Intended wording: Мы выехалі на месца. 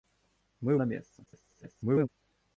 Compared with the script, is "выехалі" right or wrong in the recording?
wrong